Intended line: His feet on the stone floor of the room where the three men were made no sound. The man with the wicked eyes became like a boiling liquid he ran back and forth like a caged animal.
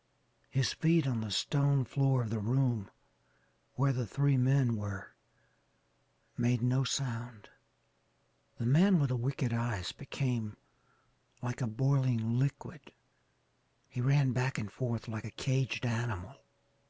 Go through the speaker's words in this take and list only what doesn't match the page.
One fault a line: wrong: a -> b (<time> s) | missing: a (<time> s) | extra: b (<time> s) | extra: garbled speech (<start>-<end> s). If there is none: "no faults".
no faults